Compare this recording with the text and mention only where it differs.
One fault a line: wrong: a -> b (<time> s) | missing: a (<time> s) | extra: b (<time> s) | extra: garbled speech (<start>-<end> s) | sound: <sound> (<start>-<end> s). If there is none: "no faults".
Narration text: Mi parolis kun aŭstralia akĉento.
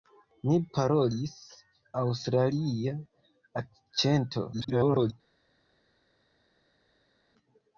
missing: kun (1.4 s)
extra: garbled speech (4.5-5.1 s)